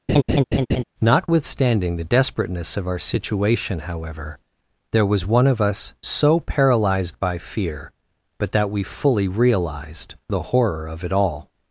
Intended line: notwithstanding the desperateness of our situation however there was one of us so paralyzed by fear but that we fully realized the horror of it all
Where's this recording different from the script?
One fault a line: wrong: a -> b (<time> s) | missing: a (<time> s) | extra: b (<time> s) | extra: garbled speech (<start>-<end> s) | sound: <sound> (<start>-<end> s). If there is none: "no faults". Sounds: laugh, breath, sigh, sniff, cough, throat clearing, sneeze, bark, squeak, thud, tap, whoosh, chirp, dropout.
sound: laugh (0.1-0.8 s)